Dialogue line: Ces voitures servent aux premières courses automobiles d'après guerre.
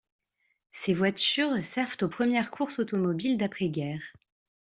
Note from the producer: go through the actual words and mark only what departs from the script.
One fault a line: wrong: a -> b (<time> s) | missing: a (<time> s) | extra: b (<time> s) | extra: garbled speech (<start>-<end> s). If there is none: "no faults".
no faults